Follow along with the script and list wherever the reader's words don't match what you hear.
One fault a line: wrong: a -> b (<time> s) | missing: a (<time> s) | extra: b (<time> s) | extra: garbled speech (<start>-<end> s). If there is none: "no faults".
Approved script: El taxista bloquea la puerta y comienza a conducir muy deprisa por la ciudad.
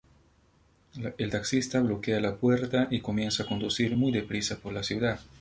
no faults